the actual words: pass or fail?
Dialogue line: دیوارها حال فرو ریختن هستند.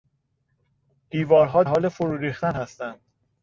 pass